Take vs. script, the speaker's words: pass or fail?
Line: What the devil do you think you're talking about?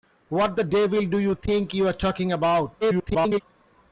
fail